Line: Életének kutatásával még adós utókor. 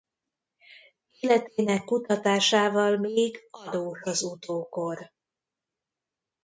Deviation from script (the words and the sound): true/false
true